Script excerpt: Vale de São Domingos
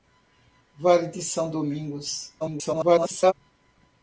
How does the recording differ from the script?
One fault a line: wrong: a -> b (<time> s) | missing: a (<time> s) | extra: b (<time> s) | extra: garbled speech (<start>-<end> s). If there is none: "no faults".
extra: garbled speech (2.4-3.3 s)